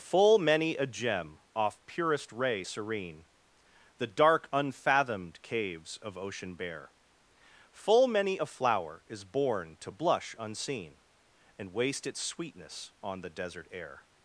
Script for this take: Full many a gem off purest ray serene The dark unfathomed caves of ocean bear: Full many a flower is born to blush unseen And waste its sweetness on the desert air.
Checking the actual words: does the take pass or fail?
pass